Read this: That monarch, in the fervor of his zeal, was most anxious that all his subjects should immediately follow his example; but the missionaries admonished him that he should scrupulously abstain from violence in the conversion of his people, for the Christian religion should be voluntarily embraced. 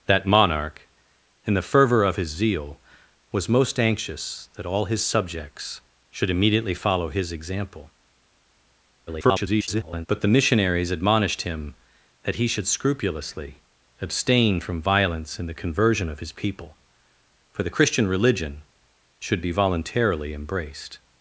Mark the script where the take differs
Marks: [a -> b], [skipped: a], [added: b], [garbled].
That monarch, in the fervor of his zeal, was most anxious that all his subjects should immediately follow his example; [garbled] but the missionaries admonished him that he should scrupulously abstain from violence in the conversion of his people, for the Christian religion should be voluntarily embraced.